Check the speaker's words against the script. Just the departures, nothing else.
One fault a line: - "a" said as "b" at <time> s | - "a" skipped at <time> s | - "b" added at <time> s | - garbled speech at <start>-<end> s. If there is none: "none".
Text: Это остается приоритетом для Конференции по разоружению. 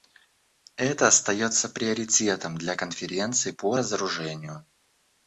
none